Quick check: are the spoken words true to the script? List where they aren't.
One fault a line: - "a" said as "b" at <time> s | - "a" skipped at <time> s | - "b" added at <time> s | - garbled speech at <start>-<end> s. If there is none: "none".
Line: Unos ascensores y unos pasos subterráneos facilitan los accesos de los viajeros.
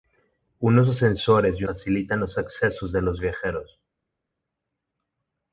- "unos pasos subterráneos" skipped at 1.6 s